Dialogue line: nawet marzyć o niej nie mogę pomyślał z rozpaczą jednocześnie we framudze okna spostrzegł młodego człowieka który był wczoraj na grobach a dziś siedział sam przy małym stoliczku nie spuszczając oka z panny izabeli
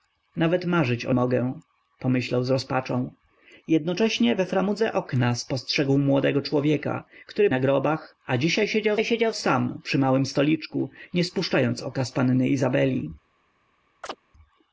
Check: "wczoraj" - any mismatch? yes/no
yes